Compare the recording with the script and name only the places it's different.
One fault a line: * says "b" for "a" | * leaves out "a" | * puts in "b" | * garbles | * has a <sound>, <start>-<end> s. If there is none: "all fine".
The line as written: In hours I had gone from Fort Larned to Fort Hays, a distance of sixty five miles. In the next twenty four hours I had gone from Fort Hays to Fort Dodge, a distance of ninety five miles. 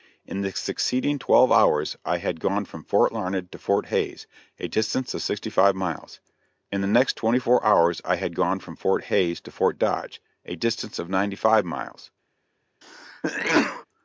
* puts in "the succeeding twelve"
* has a sneeze, 12.8-13.8 s